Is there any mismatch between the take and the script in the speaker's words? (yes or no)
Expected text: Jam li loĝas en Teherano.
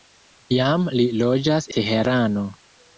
yes